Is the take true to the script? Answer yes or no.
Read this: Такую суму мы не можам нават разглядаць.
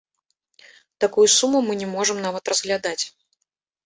yes